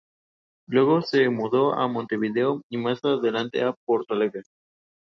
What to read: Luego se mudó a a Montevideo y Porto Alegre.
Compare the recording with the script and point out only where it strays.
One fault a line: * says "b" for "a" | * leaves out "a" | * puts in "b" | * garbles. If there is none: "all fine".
* leaves out "a"
* puts in "más adelante a"